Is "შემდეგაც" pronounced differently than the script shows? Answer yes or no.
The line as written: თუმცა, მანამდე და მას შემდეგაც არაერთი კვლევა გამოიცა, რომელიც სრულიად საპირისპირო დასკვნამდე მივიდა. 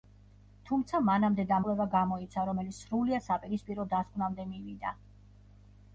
yes